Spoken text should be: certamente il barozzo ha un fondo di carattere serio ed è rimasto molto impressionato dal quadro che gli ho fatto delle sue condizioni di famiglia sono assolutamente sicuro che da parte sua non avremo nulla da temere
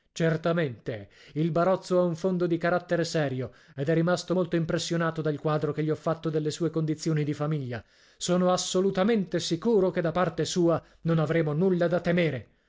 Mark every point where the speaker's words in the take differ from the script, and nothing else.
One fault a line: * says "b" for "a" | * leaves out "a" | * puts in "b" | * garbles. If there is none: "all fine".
all fine